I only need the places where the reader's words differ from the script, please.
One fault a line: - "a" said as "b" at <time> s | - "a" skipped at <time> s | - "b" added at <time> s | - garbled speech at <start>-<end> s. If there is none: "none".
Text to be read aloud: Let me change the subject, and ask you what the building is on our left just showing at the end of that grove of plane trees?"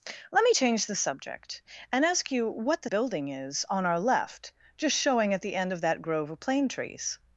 none